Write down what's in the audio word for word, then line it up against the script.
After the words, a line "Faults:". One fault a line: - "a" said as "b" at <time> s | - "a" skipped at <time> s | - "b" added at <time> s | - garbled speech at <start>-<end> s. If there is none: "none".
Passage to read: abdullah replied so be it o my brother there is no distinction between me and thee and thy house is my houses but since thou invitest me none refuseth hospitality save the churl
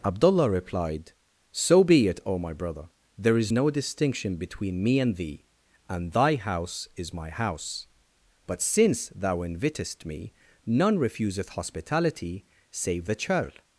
abdullah replied so be it o my brother there is no distinction between me and thee and thy house is my house but since thou invitest me none refuseth hospitality save the churl
Faults:
- "houses" said as "house" at 7.3 s